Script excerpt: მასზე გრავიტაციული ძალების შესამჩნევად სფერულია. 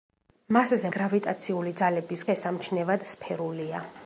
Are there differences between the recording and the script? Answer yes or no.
no